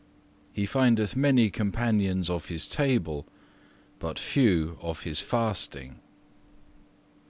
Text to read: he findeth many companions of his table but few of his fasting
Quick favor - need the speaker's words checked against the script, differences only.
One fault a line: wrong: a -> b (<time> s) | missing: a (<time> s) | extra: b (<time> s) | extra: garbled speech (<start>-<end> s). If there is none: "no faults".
no faults